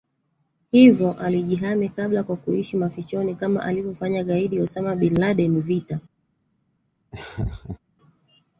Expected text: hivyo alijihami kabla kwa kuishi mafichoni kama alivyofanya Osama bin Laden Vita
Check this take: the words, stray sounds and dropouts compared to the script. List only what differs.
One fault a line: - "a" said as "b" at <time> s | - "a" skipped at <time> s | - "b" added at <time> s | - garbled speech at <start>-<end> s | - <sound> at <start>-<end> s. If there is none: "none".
- "gaidi" added at 4.2 s
- laugh at 7.1-7.8 s